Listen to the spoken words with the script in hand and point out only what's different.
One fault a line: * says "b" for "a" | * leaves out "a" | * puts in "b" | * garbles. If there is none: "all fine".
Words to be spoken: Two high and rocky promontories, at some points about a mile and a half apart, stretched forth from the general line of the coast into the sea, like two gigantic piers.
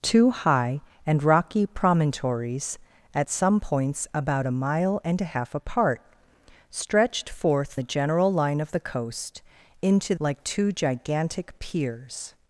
* leaves out "from"
* leaves out "the sea"